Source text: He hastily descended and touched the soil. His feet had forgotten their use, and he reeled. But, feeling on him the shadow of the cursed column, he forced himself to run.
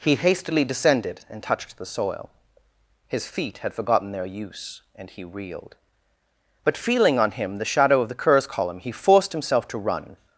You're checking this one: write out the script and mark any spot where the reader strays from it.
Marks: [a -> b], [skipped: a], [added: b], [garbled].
He hastily descended and touched the soil. His feet had forgotten their use, and he reeled. But, feeling on him the shadow of the [cursed -> curs] column, he forced himself to run.